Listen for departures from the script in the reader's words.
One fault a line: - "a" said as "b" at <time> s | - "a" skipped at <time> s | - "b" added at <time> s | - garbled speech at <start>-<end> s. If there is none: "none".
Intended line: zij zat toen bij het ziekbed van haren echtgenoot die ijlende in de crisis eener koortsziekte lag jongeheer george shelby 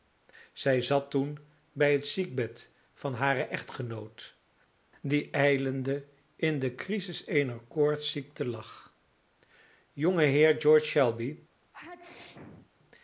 none